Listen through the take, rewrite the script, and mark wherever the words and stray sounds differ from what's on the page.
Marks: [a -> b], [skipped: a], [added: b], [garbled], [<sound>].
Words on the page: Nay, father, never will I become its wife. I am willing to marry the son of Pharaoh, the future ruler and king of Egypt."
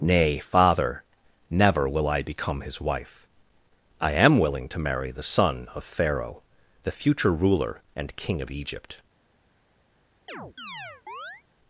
Nay, father, never will I become [its -> his] wife. I am willing to marry the son of Pharaoh, the future ruler and king of Egypt." [chirp]